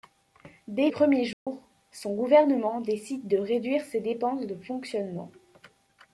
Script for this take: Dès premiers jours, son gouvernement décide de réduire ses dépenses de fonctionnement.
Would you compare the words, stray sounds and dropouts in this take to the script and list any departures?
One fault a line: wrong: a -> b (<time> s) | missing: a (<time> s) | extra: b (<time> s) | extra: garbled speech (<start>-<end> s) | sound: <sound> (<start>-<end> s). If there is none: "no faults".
sound: dropout (1.3-1.5 s)